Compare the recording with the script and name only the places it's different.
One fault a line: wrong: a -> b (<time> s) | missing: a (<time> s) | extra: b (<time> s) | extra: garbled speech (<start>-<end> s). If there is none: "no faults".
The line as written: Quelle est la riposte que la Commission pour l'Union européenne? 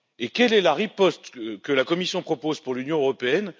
extra: propose (2.2 s)